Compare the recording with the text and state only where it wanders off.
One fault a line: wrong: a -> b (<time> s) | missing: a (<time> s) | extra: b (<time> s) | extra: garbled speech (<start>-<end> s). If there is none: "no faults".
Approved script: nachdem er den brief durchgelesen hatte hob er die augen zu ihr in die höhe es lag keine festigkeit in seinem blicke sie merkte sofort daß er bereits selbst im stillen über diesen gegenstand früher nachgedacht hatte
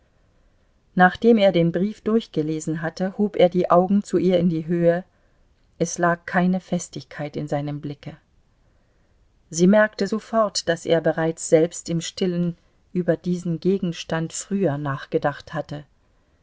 no faults